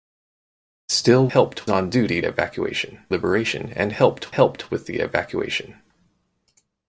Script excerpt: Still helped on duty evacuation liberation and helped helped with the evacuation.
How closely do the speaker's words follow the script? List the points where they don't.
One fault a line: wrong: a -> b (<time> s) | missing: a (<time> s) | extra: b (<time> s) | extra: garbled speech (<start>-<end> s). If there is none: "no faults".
no faults